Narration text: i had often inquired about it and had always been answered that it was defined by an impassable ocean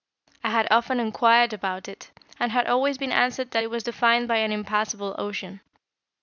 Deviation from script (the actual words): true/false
false